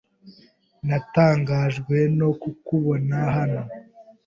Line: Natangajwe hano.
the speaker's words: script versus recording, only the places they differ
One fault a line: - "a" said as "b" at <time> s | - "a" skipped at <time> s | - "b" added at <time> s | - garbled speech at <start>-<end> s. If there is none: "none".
- "no kukubona" added at 2.2 s